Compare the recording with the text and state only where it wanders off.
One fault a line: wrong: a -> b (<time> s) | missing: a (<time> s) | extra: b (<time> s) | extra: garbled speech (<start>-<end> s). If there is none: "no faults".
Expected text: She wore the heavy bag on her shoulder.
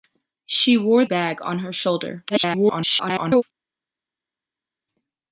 missing: the heavy (1.1 s)
extra: garbled speech (2.3-3.4 s)